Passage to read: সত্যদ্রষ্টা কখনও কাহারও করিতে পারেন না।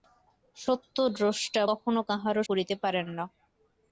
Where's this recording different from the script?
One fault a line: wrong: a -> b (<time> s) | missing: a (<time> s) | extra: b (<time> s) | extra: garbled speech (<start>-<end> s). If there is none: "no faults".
no faults